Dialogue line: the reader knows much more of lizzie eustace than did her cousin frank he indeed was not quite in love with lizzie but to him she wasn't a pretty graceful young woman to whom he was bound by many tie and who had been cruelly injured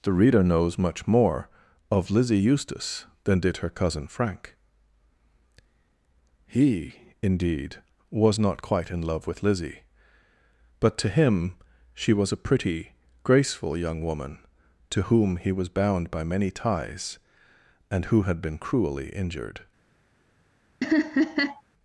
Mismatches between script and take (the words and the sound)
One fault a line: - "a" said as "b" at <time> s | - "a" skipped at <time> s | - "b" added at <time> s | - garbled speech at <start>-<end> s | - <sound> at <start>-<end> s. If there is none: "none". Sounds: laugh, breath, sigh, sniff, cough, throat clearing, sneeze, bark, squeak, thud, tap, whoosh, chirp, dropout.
- "wasn't" said as "was" at 12.1 s
- "tie" said as "ties" at 16.5 s
- laugh at 20.8-21.6 s